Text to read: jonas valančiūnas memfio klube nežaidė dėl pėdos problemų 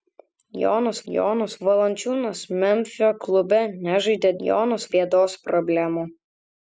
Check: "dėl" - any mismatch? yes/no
yes